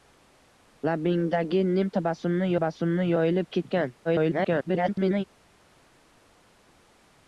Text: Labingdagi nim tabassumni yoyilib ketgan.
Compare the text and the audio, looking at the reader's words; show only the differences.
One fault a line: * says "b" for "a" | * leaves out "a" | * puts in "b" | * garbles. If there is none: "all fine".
* puts in "tabassumni"
* garbles